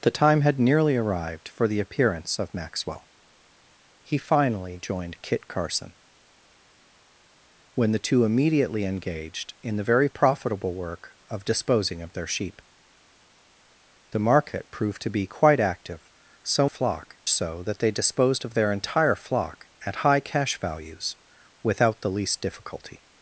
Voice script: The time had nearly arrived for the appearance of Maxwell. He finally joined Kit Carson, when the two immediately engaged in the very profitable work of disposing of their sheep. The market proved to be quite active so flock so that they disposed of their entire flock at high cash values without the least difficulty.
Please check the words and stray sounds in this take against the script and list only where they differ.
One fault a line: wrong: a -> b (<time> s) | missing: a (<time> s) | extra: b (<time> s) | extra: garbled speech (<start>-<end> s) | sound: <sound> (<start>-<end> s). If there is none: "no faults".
no faults